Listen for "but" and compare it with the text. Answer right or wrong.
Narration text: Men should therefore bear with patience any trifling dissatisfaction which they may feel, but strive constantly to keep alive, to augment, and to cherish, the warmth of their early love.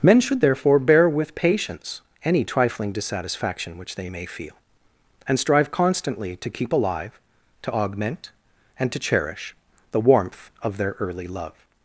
wrong